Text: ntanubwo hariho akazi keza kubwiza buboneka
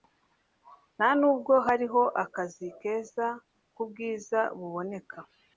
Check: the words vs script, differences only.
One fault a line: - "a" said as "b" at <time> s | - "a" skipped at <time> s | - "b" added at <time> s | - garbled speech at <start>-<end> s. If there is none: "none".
none